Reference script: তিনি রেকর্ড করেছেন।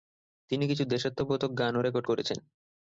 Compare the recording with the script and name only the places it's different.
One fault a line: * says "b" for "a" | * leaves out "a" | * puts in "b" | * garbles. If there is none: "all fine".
* puts in "কিছু দেশাত্মবোধক গানও"